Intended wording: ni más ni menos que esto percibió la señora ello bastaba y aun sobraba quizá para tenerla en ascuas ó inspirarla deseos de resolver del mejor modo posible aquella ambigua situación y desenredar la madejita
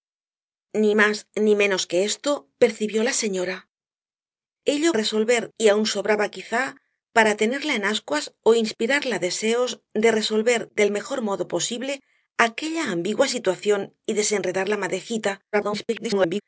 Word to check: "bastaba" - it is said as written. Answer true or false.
false